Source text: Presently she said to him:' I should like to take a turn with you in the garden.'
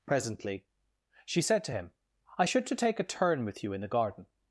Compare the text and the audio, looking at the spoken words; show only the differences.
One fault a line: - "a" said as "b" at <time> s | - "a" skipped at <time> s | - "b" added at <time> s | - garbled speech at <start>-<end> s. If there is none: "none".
- "like" skipped at 2.7 s